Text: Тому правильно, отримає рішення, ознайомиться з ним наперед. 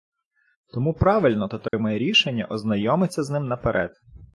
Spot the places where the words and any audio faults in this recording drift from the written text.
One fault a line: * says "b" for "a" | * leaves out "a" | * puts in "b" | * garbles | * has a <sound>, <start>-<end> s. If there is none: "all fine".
* has a dropout, 1.7-1.7 s